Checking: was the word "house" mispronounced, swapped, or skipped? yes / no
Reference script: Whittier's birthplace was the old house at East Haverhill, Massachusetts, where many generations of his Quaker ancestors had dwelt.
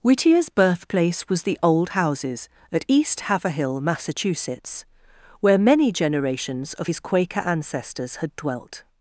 yes